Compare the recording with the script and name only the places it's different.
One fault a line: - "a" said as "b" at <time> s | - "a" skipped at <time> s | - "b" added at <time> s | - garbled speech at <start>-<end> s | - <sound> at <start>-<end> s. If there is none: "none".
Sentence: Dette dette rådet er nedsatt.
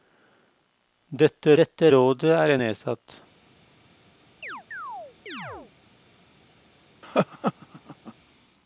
- chirp at 4.4-5.7 s
- laugh at 7.0-8.1 s